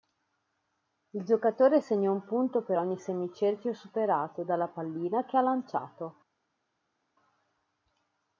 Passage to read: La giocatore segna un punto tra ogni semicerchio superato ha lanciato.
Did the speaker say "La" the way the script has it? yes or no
no